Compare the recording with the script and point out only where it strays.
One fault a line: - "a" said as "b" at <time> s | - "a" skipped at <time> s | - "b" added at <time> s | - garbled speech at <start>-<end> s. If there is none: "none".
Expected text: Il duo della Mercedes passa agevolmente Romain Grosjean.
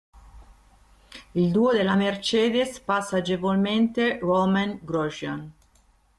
none